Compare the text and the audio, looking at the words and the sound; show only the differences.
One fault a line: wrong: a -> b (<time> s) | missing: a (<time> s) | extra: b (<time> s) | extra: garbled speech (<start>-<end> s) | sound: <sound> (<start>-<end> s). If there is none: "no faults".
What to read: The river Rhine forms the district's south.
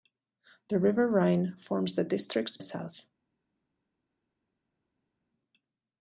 no faults